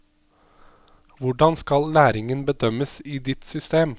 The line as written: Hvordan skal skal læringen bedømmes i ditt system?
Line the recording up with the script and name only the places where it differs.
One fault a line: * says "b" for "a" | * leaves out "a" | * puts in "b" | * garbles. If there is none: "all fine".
* leaves out "skal"